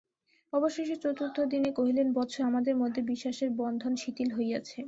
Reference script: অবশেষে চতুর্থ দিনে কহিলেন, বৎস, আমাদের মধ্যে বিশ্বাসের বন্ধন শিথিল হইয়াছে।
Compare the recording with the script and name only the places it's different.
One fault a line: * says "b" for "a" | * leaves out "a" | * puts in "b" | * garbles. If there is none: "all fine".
all fine